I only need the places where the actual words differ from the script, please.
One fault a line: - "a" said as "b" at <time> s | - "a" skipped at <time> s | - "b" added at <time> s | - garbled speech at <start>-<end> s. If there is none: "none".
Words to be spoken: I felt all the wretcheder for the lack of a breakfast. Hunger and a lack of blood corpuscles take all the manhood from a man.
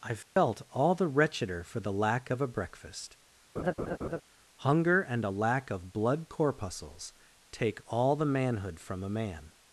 none